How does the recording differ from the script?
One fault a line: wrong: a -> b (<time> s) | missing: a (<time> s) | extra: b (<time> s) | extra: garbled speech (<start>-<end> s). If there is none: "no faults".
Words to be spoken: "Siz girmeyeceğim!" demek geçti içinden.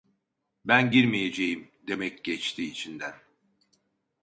wrong: Siz -> Ben (0.7 s)